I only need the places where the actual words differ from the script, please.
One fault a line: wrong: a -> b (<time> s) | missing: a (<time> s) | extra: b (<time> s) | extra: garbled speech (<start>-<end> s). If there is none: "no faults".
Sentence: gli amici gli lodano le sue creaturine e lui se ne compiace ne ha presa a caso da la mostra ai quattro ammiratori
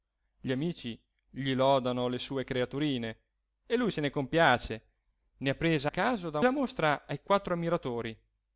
no faults